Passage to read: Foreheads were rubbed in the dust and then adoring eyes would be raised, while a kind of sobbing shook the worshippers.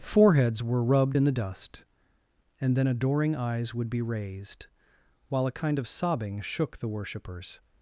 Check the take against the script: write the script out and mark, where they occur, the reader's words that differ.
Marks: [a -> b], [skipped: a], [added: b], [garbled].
Foreheads were rubbed in the dust and then adoring eyes would be raised, while a kind of sobbing shook the worshippers.